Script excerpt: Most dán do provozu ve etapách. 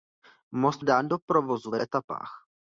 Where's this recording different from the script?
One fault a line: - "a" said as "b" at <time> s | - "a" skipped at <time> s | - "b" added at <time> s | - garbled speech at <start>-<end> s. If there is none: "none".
none